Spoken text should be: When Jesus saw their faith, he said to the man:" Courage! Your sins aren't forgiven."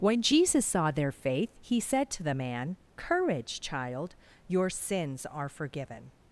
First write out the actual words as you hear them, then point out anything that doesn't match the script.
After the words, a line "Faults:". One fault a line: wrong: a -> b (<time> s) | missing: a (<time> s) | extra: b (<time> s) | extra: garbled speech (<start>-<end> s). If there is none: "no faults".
When Jesus saw their faith, he said to the man:" Courage, Child! your sins are forgiven."
Faults:
extra: Child (3.6 s)
wrong: aren't -> are (5.3 s)